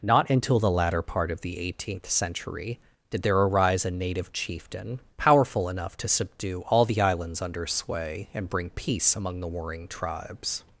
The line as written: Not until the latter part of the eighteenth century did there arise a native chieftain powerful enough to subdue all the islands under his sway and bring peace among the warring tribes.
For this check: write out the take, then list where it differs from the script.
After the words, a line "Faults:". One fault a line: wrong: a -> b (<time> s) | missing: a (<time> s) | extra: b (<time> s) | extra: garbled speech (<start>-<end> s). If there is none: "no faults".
Not until the latter part of the eighteenth century did there arise a native chieftain powerful enough to subdue all the islands under sway and bring peace among the warring tribes.
Faults:
missing: his (7.7 s)